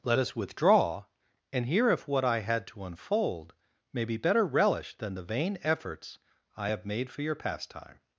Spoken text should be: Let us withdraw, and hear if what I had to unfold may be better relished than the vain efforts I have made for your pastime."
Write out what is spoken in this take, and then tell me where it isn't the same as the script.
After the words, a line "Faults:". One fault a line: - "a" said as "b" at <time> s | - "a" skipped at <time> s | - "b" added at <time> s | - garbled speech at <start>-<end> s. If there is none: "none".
Let us withdraw, and hear if what I had to unfold may be better relished than the vain efforts I have made for your pastime."
Faults:
none